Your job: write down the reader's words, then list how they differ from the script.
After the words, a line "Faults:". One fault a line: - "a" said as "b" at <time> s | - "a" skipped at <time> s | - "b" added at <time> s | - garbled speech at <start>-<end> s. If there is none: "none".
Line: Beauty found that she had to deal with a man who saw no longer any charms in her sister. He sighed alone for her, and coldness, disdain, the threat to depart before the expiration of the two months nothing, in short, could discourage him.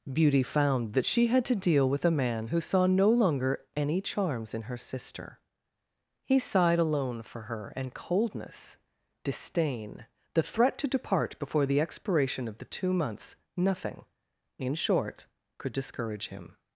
Beauty found that she had to deal with a man who saw no longer any charms in her sister. He sighed alone for her, and coldness, disdain, the threat to depart before the expiration of the two months nothing, in short, could discourage him.
Faults:
none